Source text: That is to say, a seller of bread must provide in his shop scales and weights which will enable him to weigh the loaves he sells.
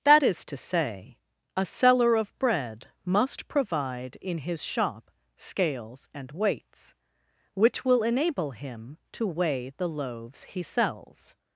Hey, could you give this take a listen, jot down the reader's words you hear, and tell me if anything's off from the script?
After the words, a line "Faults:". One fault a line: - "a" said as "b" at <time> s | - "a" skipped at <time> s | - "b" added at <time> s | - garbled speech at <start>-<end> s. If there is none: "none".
That is to say, a seller of bread must provide in his shop scales and weights which will enable him to weigh the loaves he sells.
Faults:
none